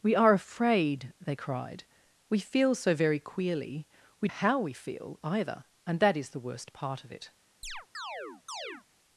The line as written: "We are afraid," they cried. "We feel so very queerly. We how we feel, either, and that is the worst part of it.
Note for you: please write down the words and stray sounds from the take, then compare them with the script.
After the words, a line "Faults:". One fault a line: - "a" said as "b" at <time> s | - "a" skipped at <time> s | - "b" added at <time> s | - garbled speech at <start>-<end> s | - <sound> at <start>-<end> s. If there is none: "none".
"We are afraid," they cried. "We feel so very queerly. We how we feel, either, and that is the worst part of it.
Faults:
- chirp at 7.6-8.8 s